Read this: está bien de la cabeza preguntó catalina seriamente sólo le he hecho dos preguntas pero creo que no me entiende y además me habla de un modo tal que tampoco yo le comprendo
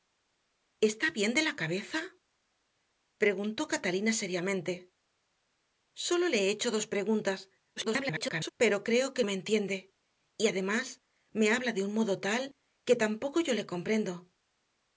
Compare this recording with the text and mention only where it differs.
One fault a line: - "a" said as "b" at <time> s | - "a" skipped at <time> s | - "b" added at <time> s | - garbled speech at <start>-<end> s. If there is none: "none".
- garbled speech at 7.8-8.5 s
- "no" skipped at 9.2 s